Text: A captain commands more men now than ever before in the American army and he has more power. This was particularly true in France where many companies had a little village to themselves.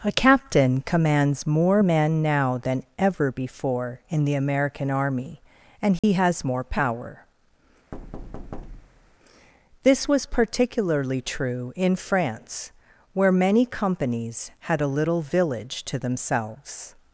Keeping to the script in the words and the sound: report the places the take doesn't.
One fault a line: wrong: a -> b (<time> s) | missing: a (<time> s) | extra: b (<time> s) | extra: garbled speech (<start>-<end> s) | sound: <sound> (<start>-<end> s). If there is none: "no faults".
sound: dropout (6.0-6.0 s)
sound: thud (7.9-9.2 s)